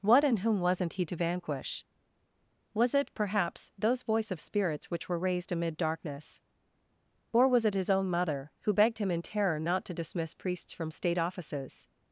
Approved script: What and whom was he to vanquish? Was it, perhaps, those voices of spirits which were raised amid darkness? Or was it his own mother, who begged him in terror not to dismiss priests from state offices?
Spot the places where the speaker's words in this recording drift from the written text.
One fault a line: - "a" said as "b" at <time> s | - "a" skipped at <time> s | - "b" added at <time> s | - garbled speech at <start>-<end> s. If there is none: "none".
- "was" said as "wasn't" at 0.6 s
- "voices" said as "voice" at 4.0 s